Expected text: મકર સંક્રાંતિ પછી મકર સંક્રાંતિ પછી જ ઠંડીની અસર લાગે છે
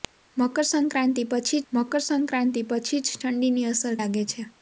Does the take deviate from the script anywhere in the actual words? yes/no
no